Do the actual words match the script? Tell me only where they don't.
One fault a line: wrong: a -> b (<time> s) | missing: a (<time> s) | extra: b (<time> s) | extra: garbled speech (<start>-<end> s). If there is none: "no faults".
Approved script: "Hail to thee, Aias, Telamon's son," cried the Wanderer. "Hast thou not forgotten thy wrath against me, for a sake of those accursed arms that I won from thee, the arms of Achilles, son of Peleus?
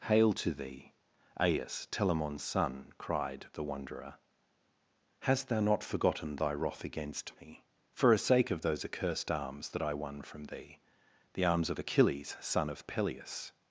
no faults